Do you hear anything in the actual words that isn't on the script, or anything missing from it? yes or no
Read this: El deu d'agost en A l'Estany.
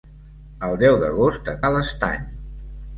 no